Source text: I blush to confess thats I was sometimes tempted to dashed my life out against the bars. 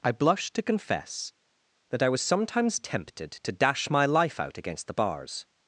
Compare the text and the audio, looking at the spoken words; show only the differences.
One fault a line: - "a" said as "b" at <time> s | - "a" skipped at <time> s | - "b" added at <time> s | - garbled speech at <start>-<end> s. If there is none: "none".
- "thats" said as "that" at 1.9 s
- "dashed" said as "dash" at 3.5 s